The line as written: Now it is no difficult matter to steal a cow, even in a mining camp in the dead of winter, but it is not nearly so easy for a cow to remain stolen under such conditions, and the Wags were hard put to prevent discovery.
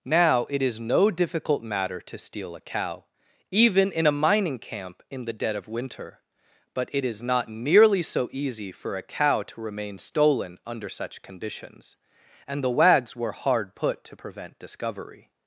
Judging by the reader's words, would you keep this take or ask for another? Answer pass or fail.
pass